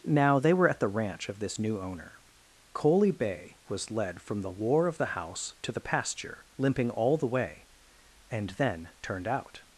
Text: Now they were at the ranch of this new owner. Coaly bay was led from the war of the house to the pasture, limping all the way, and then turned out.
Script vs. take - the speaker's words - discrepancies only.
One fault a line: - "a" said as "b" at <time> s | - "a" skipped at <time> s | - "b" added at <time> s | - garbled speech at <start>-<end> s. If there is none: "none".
none